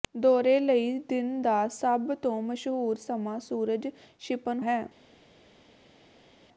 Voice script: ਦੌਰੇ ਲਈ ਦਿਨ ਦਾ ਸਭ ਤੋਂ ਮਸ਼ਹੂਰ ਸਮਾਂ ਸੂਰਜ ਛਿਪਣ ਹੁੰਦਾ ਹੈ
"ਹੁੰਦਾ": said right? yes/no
no